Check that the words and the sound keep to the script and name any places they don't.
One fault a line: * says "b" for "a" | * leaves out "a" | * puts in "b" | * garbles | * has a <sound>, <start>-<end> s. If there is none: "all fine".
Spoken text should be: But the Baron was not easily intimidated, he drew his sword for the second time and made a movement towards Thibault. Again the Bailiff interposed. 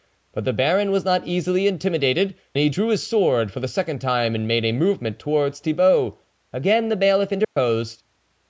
* has a dropout, 7.4-7.6 s